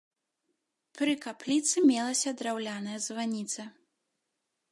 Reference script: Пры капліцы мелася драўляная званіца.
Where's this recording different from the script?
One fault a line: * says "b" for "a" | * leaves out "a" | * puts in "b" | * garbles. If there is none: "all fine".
all fine